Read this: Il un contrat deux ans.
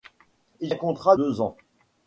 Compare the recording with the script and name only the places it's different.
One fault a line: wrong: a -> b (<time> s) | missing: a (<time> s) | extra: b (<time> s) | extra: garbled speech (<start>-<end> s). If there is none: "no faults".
no faults